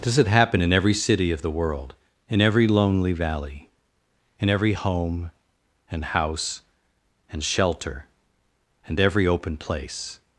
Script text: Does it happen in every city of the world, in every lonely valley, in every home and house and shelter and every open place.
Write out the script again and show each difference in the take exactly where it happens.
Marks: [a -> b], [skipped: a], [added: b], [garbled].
Does it happen in every city of the world, in every lonely valley, in every home and house and shelter and every open place.